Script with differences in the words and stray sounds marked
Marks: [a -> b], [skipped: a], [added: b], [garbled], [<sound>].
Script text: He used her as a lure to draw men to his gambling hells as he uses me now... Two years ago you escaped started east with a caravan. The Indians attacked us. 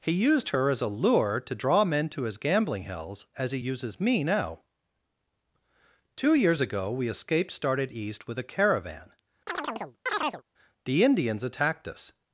He used her as a lure to draw men to his gambling hells as he uses me now... Two years ago [you -> we] escaped started east with a caravan. [chirp] The Indians attacked us.